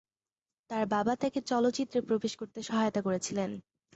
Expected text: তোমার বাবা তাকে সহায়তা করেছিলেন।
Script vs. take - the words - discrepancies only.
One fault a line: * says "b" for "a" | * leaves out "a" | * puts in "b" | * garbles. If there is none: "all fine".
* says "তার" for "তোমার"
* puts in "চলচ্চিত্রে প্রবেশ করতে"